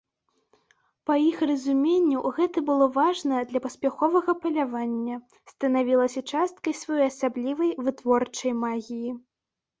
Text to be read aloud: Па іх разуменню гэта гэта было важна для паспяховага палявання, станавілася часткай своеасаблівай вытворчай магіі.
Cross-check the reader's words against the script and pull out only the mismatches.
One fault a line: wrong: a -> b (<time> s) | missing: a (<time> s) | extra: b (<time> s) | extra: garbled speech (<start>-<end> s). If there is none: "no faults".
missing: гэта (2.6 s)